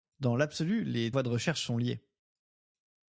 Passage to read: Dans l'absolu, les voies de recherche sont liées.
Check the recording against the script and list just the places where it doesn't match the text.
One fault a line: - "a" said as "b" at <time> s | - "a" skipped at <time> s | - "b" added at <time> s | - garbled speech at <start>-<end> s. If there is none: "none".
none